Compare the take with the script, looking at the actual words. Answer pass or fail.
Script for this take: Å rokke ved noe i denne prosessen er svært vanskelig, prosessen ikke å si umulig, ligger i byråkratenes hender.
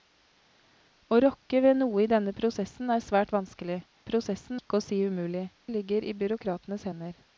pass